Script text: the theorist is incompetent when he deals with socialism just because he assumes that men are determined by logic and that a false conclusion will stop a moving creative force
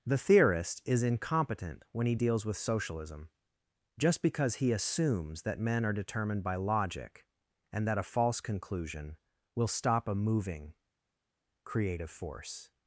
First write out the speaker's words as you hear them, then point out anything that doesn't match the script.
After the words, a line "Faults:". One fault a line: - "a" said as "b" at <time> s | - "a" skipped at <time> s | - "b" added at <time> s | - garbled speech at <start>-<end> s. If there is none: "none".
the theorist is incompetent when he deals with socialism just because he assumes that men are determined by logic and that a false conclusion will stop a moving creative force
Faults:
none